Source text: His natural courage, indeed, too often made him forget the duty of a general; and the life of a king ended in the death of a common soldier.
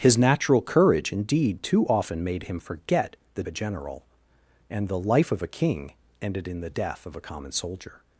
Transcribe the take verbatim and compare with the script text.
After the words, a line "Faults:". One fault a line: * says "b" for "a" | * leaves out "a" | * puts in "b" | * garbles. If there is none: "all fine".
His natural courage, indeed, too often made him forget the a general; and the life of a king ended in the death of a common soldier.
Faults:
* leaves out "duty of"